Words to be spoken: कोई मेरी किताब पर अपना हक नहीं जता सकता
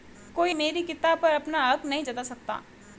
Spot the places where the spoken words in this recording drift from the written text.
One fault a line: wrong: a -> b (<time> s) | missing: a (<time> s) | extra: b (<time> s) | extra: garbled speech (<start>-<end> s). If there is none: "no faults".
no faults